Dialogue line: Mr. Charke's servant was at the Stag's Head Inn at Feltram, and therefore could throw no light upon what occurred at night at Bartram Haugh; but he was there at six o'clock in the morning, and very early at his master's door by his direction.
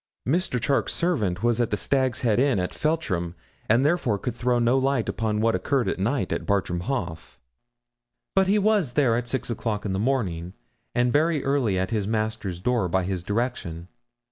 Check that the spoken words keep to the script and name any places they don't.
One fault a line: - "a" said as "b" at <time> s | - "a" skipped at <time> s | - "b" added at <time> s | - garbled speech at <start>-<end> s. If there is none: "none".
none